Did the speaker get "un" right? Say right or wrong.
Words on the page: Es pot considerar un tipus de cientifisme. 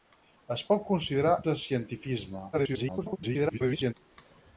wrong